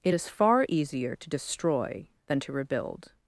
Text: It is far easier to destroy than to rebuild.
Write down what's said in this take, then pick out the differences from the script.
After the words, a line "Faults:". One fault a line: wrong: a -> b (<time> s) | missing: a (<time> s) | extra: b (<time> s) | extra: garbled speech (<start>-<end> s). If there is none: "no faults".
It is far easier to destroy than to rebuild.
Faults:
no faults